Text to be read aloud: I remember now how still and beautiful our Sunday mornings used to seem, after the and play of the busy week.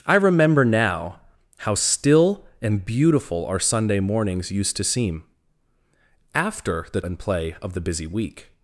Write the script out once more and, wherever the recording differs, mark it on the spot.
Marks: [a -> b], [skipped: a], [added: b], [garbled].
I remember now how still and beautiful our Sunday mornings used to seem, after the and play of the busy week.